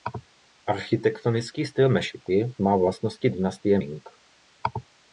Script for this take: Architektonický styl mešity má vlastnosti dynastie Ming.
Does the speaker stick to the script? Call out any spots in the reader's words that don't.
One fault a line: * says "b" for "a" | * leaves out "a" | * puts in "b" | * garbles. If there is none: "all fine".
all fine